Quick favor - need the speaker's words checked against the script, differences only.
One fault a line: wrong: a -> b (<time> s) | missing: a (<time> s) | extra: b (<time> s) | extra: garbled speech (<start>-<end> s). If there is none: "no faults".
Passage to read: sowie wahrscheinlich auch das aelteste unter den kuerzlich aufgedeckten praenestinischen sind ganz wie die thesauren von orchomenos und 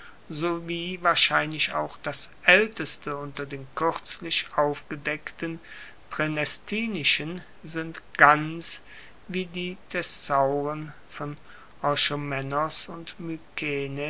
no faults